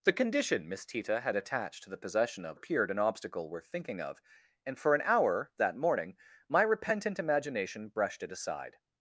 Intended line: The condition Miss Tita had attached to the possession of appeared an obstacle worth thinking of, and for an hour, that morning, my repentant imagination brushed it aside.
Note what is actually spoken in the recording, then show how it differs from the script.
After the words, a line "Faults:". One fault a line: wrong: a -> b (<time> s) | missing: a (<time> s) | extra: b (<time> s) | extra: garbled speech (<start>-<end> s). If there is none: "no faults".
The condition Miss Tita had attached to the possession of appeared an obstacle worth thinking of, and for an hour, that morning, my repentant imagination brushed it aside.
Faults:
no faults